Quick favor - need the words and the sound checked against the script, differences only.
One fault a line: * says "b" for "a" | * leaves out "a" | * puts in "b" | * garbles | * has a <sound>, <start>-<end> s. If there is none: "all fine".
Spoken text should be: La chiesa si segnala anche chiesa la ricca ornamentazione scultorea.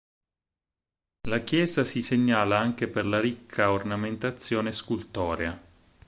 * says "per" for "chiesa"